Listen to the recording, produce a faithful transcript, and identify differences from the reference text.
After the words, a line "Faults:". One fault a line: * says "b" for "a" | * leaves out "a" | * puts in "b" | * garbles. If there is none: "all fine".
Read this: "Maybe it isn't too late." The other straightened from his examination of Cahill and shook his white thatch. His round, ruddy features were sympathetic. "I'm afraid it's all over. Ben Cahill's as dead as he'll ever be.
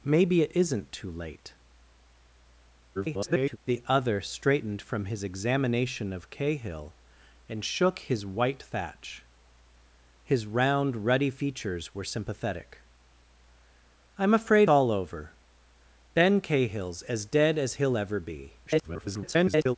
"Maybe it isn't too late." [garbled] The other straightened from his examination of Cahill and shook his white thatch. His round, ruddy features were sympathetic. "I'm afraid all over. Ben Cahill's as dead as he'll ever be. [garbled]
Faults:
* garbles
* leaves out "it's"
* garbles